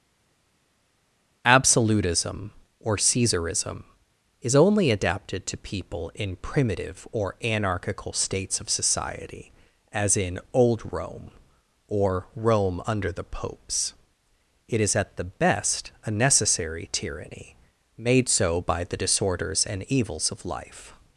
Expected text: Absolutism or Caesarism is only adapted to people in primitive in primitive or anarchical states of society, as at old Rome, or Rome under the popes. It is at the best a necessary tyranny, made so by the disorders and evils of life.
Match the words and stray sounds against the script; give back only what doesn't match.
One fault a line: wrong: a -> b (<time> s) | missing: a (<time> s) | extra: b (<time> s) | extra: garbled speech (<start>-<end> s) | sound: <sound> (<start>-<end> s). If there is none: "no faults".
missing: in primitive (7.1 s)
wrong: at -> in (10.2 s)